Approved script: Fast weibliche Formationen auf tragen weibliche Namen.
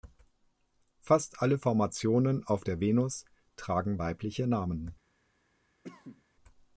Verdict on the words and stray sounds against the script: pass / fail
fail